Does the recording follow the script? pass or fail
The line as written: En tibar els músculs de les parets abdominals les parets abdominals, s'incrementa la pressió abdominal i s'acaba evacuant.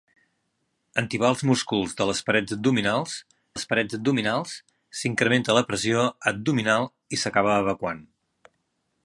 pass